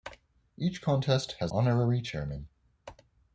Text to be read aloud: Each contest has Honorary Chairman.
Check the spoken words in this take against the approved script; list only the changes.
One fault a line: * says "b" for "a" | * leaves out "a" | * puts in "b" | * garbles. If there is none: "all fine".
all fine